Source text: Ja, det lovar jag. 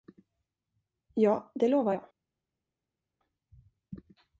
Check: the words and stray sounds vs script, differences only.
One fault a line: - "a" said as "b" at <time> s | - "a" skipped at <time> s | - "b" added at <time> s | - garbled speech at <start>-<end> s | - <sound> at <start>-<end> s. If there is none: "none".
none